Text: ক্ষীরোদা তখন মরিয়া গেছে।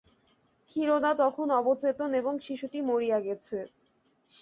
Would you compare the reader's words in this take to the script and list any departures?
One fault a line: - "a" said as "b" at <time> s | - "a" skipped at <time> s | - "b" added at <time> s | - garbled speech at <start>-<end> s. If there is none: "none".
- "অবচেতন এবং শিশুটি" added at 1.6 s